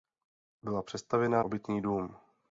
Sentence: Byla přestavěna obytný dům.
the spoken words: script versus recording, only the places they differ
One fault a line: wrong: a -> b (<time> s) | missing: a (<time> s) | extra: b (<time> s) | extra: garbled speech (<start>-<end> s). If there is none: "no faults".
no faults